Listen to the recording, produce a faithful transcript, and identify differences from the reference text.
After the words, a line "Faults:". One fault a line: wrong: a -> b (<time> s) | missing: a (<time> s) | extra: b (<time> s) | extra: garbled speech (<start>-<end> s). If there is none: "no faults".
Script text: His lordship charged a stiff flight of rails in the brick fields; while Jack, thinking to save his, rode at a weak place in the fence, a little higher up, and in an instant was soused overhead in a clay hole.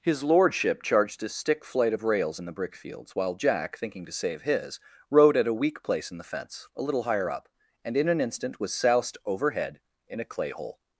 His lordship charged a stick flight of rails in the brick fields; while Jack, thinking to save his, rode at a weak place in the fence, a little higher up, and in an instant was soused overhead in a clay hole.
Faults:
wrong: stiff -> stick (1.3 s)